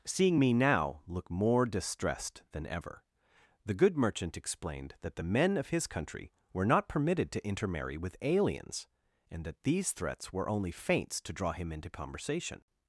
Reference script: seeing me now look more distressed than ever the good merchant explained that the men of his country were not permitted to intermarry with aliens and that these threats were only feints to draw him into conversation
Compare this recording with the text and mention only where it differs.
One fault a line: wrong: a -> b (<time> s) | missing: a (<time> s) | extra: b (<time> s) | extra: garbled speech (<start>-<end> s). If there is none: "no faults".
no faults